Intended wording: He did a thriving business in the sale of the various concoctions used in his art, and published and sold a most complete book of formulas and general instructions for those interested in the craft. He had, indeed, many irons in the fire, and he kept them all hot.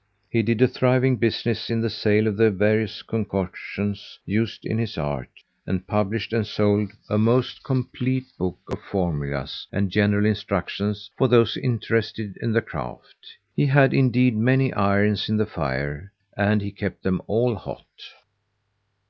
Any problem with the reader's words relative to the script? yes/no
no